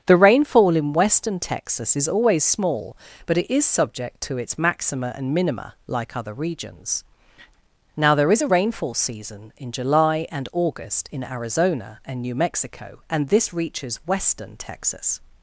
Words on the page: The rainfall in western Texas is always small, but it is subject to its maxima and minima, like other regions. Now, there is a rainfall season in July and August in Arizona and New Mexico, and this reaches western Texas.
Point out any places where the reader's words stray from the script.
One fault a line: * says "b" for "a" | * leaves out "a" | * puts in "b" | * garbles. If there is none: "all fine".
all fine